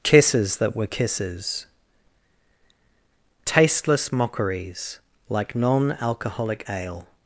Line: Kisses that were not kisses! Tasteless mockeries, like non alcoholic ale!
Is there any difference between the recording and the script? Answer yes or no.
yes